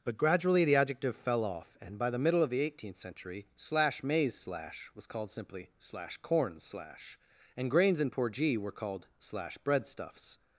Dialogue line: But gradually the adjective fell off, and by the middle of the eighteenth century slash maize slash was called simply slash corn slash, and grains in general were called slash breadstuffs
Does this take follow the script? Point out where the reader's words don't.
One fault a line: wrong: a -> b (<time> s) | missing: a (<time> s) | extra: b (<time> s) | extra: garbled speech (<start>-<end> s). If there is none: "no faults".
wrong: general -> porgee (8.1 s)